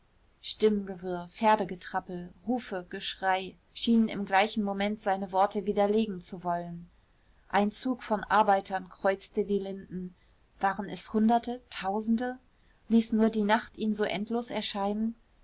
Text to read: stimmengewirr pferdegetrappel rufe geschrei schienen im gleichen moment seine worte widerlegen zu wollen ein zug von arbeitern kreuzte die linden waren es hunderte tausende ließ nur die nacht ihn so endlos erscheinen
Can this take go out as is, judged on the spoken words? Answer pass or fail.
pass